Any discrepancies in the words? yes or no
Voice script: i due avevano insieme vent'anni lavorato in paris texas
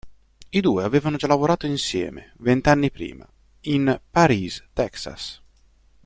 yes